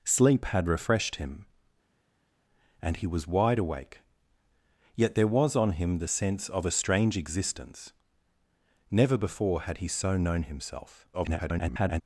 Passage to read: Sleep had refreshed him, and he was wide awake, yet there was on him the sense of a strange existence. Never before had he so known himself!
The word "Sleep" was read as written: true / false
true